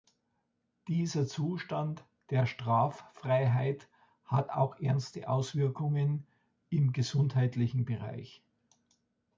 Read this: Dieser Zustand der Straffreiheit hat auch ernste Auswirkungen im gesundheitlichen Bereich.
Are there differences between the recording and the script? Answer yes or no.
no